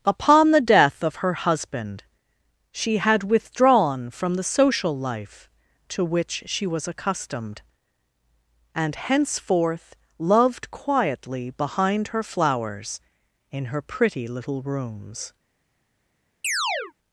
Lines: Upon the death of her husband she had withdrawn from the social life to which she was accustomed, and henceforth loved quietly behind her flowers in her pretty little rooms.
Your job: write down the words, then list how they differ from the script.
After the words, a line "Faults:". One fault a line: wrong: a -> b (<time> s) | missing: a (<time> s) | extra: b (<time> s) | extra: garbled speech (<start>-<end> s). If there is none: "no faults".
Upon the death of her husband she had withdrawn from the social life to which she was accustomed, and henceforth loved quietly behind her flowers in her pretty little rooms.
Faults:
no faults